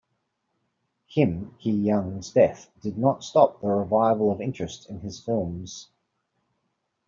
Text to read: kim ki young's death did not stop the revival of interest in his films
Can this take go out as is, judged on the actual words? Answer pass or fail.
pass